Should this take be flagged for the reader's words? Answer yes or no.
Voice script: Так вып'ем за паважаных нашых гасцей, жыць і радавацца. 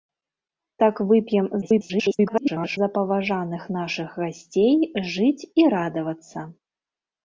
yes